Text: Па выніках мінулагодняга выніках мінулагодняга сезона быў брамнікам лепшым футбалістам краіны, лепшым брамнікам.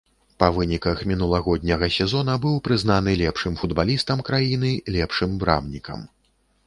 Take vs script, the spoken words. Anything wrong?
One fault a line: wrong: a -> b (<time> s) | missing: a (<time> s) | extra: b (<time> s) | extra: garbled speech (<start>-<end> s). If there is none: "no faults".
missing: выніках мінулагодняга (1.9 s)
wrong: брамнікам -> прызнаны (2.7 s)